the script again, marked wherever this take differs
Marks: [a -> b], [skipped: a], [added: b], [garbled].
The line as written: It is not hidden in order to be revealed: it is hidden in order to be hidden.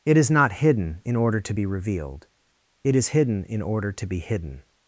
It is not hidden in order to be revealed: it is hidden in order to be hidden.